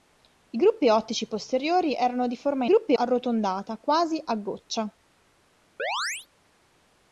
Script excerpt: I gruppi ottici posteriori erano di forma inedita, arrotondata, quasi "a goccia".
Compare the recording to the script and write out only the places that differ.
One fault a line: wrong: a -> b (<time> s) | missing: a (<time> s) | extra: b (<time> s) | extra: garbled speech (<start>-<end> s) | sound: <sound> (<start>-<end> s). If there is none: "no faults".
wrong: inedita -> gruppi (2.6 s)
sound: chirp (5.8-6.3 s)